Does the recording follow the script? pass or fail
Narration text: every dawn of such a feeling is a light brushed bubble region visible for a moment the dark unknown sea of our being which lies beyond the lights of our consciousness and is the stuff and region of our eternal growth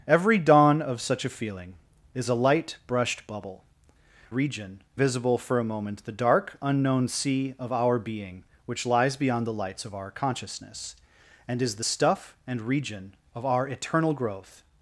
pass